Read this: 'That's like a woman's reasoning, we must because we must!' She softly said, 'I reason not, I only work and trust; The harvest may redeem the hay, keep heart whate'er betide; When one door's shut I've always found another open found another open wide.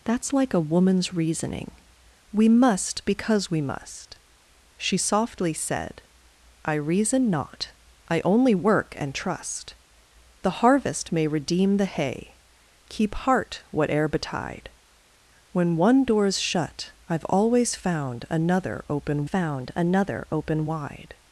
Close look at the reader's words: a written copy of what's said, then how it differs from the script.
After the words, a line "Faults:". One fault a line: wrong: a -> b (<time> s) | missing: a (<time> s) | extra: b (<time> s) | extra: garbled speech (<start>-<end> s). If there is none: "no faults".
'That's like a woman's reasoning, we must because we must!' She softly said, 'I reason not, I only work and trust; The harvest may redeem the hay, keep heart whate'er betide; When one door's shut I've always found another open found another open wide.
Faults:
no faults